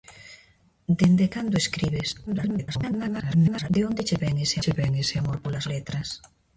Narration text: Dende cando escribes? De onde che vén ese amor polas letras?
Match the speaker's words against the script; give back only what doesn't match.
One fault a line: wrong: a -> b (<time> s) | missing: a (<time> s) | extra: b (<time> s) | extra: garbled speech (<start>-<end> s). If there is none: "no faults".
extra: garbled speech (2.3-3.7 s)
extra: che vén ese (4.6 s)